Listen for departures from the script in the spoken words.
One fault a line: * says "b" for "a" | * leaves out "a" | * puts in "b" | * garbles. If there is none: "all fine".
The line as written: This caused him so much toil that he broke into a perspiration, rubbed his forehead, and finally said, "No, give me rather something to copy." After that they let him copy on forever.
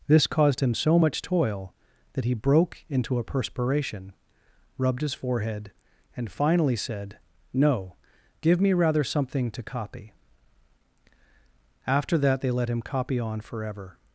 all fine